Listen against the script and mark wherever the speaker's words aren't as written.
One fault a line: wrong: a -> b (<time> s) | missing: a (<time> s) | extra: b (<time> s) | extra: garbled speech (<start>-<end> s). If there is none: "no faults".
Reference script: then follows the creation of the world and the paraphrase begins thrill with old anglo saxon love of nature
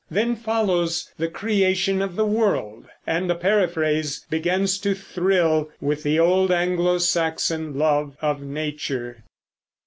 extra: to (4.8 s)
extra: the (6.0 s)